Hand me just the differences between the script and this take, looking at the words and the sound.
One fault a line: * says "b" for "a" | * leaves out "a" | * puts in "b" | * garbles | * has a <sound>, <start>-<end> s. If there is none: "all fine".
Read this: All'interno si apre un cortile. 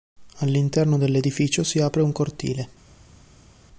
* puts in "dell'edificio"